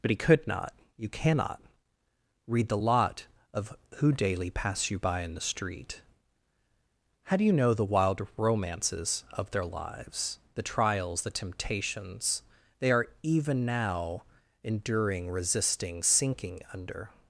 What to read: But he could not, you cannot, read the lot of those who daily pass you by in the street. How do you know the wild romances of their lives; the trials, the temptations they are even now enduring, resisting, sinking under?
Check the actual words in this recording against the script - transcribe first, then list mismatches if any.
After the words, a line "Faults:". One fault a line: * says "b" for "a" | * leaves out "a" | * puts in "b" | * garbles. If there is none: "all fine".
But he could not, you cannot, read the lot of who daily pass you by in the street. How do you know the wild romances of their lives; the trials, the temptations they are even now enduring, resisting, sinking under?
Faults:
* leaves out "those"